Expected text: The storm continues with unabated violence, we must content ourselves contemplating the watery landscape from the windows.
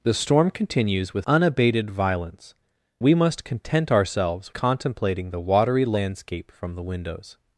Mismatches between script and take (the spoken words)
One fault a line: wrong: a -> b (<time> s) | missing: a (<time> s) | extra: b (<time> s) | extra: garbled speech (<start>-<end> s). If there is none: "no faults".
no faults